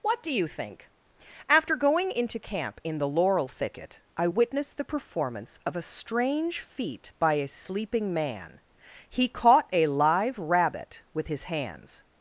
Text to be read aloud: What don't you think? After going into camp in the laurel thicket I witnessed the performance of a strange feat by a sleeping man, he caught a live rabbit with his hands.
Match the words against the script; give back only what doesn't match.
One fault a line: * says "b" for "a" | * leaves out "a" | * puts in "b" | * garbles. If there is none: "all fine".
* says "do" for "don't"